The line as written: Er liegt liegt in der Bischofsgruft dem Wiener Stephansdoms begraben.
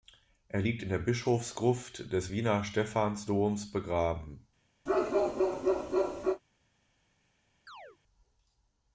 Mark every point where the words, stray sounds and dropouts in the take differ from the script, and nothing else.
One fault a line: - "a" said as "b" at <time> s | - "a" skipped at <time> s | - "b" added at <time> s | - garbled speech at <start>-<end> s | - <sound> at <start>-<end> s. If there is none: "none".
- "liegt" skipped at 0.8 s
- "dem" said as "des" at 2.1 s
- bark at 4.9-6.4 s
- chirp at 7.7-8.0 s